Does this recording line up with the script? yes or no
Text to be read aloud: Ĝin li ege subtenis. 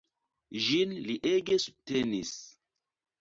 yes